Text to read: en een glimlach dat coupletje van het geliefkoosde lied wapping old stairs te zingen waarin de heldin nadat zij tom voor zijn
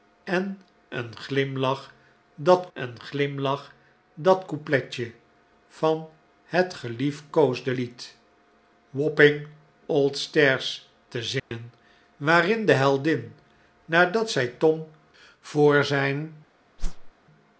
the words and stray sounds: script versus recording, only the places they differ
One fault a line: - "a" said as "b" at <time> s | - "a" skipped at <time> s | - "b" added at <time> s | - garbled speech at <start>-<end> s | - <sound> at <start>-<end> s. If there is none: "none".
- "een glimlach dat" added at 2.7 s
- dropout at 11.4-11.5 s
- whoosh at 16.8-17.1 s